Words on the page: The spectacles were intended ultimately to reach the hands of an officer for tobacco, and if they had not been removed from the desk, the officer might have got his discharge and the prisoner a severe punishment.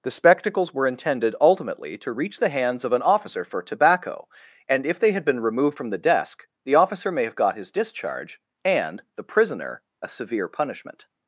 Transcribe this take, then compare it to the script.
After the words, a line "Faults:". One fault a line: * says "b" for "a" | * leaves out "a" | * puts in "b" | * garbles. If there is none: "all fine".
The spectacles were intended ultimately to reach the hands of an officer for tobacco, and if they had been removed from the desk, the officer may have got his discharge and the prisoner a severe punishment.
Faults:
* leaves out "not"
* says "may" for "might"